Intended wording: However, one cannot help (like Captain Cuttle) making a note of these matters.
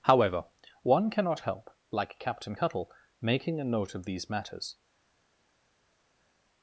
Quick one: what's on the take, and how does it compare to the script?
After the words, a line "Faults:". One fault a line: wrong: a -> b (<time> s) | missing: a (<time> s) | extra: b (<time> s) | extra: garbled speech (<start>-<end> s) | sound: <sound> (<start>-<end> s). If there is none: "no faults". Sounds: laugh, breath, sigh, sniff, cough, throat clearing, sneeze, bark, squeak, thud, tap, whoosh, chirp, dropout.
However, one cannot help (like Captain Cuttle) making a note of these matters.
Faults:
no faults